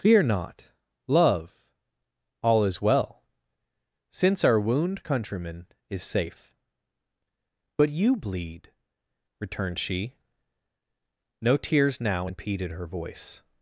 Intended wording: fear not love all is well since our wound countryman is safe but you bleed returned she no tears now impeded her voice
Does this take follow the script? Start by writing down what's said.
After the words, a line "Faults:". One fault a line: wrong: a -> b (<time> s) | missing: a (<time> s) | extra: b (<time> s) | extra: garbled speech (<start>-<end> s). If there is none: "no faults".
fear not love all is well since our wound countryman is safe but you bleed returned she no tears now impeded her voice
Faults:
no faults